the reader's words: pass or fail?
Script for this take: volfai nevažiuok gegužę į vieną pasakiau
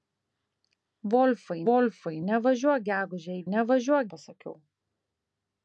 fail